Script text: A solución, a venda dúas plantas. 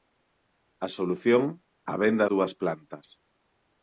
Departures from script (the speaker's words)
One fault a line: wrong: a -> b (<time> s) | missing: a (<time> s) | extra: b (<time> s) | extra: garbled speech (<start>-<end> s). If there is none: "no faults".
no faults